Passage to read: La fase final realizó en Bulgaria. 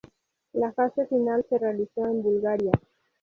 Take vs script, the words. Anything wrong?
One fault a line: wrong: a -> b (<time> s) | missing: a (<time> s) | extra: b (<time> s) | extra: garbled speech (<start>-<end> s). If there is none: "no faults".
extra: se (1.5 s)